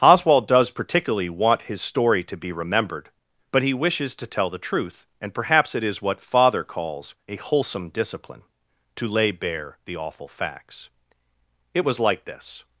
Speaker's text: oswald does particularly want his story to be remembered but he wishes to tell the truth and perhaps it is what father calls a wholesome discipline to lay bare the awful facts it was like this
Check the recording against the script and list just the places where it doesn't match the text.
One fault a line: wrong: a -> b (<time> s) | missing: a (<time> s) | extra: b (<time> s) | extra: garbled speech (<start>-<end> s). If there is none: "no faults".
no faults